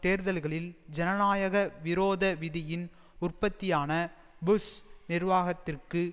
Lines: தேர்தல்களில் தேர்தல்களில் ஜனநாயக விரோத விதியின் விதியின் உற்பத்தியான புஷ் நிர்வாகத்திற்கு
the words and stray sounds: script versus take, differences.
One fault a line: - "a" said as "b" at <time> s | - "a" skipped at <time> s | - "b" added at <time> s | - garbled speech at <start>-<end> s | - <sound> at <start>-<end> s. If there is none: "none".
- "தேர்தல்களில்" skipped at 0.7 s
- "விதியின்" skipped at 2.9 s